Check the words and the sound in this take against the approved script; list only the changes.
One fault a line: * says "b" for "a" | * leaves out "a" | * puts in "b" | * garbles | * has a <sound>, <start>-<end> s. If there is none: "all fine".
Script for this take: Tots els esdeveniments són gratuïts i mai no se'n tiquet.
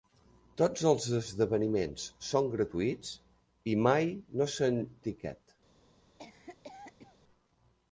* has a cough, 6.2-7.2 s